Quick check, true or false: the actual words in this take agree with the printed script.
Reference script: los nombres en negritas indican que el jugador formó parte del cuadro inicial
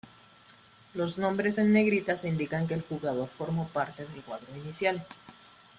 true